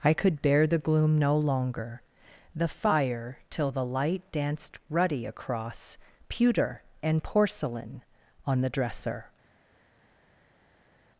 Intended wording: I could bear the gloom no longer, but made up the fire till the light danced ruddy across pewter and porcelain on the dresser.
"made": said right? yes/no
no